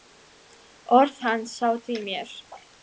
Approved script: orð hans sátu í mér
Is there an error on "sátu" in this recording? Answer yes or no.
no